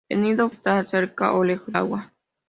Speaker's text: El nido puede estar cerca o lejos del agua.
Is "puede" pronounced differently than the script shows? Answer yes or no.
yes